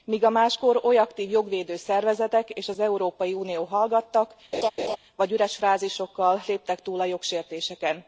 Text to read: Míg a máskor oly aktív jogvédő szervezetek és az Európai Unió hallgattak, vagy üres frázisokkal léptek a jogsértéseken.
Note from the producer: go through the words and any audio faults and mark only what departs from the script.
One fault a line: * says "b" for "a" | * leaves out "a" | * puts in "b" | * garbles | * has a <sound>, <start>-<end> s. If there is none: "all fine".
* has a laugh, 4.5-5.0 s
* puts in "túl"